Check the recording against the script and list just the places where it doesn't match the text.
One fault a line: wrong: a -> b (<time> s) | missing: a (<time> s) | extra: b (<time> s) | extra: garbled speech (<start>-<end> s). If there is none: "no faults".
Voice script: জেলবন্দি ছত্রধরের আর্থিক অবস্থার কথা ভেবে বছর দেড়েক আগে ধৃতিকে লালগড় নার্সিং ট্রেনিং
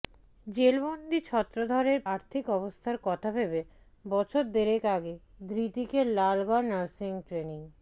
no faults